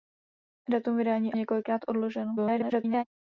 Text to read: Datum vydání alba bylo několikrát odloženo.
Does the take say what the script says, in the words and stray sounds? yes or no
no